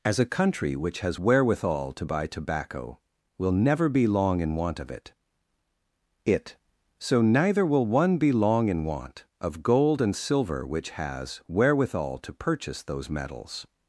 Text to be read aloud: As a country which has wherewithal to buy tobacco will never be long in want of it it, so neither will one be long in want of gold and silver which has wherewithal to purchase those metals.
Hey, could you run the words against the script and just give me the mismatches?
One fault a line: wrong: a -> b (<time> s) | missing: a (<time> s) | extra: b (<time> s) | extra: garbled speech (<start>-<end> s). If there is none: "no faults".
no faults